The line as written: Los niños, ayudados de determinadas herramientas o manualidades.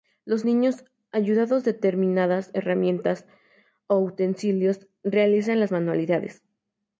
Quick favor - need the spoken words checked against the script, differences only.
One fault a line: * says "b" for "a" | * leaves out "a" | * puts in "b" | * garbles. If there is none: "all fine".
* puts in "utensilios realizan las"